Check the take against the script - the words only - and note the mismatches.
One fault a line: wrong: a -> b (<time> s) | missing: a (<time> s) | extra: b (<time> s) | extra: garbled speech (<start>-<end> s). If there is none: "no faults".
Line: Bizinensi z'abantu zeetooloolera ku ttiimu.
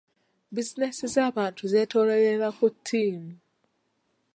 no faults